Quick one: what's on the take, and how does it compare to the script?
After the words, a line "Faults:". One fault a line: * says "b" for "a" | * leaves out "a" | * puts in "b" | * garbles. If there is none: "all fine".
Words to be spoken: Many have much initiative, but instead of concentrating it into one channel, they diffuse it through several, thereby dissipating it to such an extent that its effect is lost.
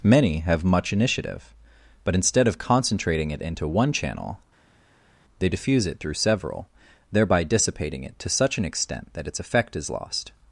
Many have much initiative, but instead of concentrating it into one channel, they diffuse it through several, thereby dissipating it to such an extent that its effect is lost.
Faults:
all fine